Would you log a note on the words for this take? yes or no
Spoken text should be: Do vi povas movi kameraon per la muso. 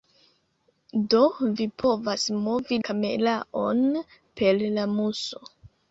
no